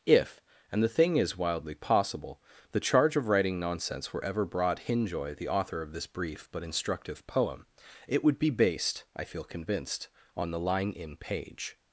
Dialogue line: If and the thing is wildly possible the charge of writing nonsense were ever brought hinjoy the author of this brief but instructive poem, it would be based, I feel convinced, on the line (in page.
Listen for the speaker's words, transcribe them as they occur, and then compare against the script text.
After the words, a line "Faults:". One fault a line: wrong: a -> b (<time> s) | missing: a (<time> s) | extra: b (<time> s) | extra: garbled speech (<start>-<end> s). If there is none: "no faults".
If and the thing is wildly possible the charge of writing nonsense were ever brought hinjoy the author of this brief but instructive poem, it would be based, I feel convinced, on the line (in page.
Faults:
no faults